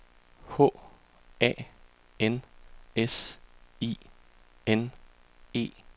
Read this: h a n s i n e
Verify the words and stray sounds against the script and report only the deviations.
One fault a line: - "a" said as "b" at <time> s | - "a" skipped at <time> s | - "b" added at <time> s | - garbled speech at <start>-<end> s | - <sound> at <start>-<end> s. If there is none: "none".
none